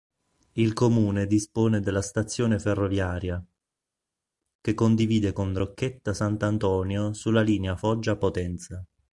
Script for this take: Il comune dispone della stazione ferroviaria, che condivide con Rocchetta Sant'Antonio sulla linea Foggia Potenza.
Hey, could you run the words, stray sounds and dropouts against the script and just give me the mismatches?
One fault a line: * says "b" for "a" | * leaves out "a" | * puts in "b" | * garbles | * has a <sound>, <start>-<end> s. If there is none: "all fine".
all fine